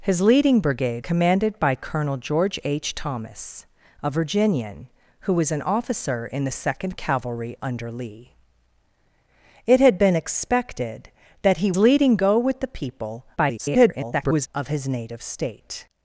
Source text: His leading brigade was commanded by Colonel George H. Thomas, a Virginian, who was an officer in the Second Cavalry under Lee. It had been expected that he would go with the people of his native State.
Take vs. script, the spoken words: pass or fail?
fail